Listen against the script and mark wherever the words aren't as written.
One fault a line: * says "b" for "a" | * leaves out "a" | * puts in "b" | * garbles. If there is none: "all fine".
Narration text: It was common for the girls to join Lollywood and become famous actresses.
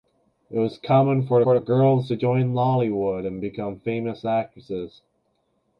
* puts in "for"